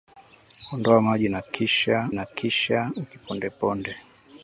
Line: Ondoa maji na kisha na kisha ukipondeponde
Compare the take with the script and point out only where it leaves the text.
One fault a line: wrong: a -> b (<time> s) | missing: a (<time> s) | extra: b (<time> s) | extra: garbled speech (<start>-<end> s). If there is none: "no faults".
no faults